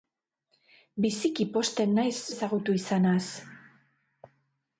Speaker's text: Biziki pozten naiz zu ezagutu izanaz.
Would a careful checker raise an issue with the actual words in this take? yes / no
yes